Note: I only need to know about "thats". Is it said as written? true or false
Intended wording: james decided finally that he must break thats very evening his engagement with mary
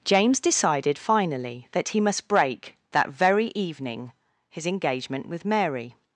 false